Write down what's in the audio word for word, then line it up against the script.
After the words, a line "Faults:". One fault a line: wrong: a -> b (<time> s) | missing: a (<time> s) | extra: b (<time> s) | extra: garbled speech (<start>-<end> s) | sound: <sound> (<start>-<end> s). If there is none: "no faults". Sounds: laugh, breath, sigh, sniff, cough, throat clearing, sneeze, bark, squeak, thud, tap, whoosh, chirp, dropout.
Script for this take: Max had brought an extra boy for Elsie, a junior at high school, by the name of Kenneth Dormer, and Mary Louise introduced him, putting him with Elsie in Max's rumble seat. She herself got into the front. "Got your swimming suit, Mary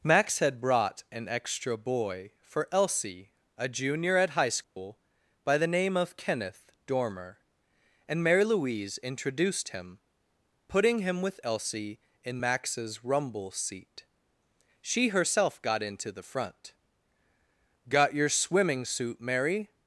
Max had brought an extra boy for Elsie, a junior at high school, by the name of Kenneth Dormer, and Mary Louise introduced him, putting him with Elsie in Max's rumble seat. She herself got into the front. "Got your swimming suit, Mary
Faults:
sound: dropout (4.6-4.8 s)